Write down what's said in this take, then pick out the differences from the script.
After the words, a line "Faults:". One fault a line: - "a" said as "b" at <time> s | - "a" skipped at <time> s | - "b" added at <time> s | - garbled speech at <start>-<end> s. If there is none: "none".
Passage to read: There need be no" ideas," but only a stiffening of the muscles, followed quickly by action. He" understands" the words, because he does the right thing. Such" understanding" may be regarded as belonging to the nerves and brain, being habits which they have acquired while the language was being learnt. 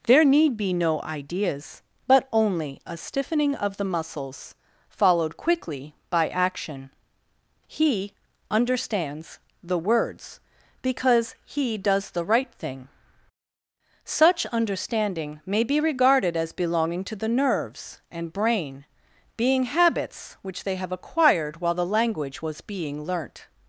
There need be no" ideas," but only a stiffening of the muscles, followed quickly by action. He" understands" the words, because he does the right thing. Such" understanding" may be regarded as belonging to the nerves and brain, being habits which they have acquired while the language was being learnt.
Faults:
none